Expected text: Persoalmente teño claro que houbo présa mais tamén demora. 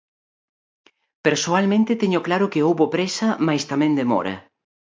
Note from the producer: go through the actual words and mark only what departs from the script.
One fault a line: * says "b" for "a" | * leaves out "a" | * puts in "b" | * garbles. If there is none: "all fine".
all fine